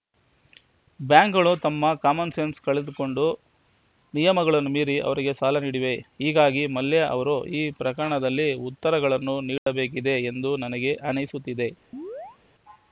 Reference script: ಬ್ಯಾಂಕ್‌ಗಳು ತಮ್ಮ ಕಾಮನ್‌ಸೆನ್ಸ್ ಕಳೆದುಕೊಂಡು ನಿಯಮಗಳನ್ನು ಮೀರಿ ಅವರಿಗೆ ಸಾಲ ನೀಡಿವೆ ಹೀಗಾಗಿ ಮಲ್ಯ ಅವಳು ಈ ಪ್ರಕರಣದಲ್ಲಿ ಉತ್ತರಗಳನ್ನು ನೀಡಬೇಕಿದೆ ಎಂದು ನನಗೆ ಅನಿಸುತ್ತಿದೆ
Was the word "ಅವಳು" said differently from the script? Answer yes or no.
yes